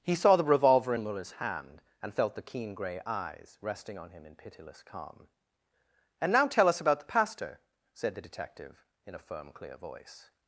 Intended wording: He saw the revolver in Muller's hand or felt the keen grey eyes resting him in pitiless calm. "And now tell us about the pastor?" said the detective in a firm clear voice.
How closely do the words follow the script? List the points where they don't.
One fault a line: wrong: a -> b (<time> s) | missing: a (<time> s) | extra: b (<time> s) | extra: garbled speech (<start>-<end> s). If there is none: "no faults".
wrong: or -> and (2.0 s)
extra: on (4.0 s)